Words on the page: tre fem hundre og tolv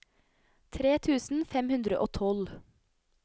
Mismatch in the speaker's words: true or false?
true